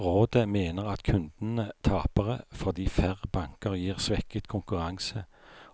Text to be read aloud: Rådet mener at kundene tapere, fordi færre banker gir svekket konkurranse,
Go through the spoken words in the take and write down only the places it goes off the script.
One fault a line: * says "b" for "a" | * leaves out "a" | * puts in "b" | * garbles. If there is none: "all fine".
all fine